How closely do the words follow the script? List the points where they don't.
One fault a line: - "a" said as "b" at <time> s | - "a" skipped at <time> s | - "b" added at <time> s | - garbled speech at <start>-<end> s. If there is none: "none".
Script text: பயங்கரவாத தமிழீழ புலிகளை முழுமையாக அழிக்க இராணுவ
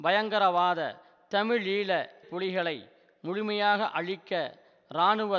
none